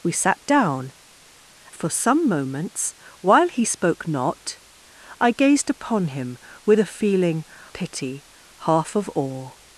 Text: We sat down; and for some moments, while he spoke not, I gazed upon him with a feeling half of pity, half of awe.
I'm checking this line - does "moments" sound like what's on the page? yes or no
yes